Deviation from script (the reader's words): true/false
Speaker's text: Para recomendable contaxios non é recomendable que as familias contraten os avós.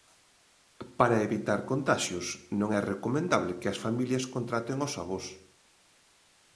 true